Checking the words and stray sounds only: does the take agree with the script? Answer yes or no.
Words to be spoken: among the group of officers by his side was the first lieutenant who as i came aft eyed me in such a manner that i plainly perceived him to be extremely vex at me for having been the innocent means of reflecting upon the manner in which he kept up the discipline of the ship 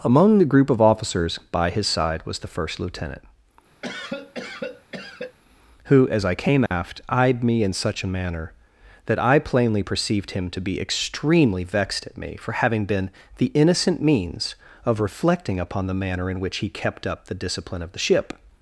no